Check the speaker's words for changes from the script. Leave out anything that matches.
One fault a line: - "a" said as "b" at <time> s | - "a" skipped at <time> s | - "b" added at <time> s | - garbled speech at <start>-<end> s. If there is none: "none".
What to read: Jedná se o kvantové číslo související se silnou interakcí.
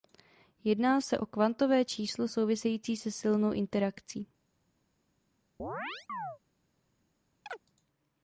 none